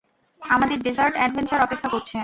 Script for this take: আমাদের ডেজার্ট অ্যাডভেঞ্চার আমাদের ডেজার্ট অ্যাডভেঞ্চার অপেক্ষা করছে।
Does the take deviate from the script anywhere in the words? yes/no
yes